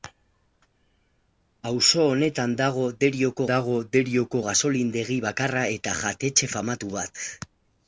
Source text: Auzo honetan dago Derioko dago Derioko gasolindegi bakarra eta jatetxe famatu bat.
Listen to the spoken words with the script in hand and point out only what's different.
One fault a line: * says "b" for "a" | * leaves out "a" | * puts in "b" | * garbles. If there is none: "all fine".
all fine